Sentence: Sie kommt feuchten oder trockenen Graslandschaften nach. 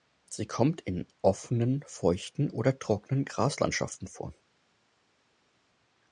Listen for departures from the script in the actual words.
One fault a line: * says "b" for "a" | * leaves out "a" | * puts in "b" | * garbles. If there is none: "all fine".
* puts in "in offenen"
* says "vor" for "nach"